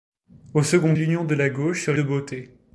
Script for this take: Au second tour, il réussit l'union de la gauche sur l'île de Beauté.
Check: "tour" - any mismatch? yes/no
yes